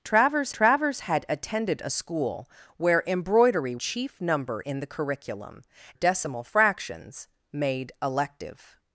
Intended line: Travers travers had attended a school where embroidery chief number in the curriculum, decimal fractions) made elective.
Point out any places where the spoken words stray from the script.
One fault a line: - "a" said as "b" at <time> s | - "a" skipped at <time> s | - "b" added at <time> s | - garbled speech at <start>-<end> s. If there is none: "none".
none